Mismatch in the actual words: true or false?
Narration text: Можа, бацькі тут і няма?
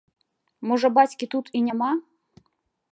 false